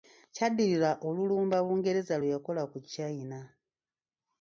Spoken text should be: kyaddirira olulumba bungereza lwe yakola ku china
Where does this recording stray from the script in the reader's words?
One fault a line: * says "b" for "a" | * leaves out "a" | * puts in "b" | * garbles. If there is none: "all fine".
all fine